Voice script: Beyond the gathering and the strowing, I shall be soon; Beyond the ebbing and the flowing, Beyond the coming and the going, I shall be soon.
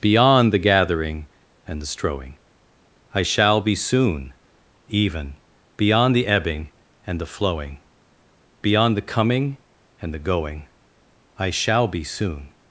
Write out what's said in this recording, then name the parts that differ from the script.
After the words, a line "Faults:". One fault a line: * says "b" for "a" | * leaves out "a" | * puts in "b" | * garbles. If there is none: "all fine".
Beyond the gathering and the strowing, I shall be soon; even Beyond the ebbing and the flowing, Beyond the coming and the going, I shall be soon.
Faults:
* puts in "even"